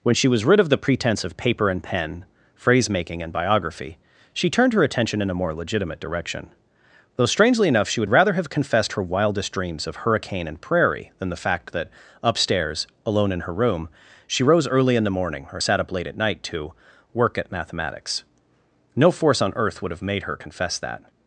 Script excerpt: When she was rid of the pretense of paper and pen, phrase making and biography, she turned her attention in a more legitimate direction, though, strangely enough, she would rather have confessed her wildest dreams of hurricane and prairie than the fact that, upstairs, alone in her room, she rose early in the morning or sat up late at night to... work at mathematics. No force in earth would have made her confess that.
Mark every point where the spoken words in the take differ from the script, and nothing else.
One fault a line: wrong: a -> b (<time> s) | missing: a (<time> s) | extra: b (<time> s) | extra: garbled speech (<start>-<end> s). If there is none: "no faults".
wrong: in -> on (19.4 s)